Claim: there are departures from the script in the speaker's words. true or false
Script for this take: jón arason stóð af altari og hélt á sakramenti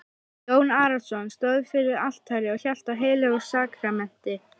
true